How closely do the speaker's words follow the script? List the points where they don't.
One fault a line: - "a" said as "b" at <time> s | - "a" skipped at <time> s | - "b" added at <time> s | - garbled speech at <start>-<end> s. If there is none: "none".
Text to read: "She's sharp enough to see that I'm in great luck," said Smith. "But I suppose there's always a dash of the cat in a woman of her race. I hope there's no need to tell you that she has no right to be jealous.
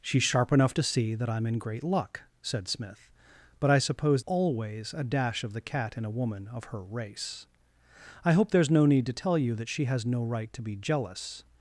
- "there's" skipped at 4.2 s